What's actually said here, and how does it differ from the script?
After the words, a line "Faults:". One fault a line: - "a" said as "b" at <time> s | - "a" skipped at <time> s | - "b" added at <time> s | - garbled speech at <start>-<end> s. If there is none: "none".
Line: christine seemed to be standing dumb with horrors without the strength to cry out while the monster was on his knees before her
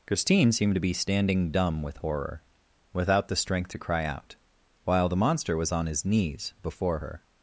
christine seemed to be standing dumb with horror without the strength to cry out while the monster was on his knees before her
Faults:
- "horrors" said as "horror" at 2.0 s